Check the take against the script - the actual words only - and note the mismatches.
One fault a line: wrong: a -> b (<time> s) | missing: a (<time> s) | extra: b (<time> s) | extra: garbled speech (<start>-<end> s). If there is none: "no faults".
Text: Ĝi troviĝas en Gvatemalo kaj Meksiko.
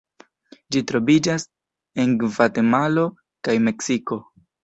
no faults